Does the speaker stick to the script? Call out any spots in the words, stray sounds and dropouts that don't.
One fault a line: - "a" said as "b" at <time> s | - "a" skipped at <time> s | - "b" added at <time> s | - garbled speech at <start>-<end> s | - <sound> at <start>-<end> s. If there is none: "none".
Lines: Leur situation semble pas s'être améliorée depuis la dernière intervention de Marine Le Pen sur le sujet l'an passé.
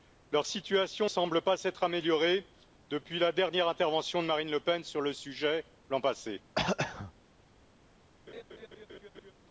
- throat clearing at 6.6-7.1 s
- laugh at 8.3-9.3 s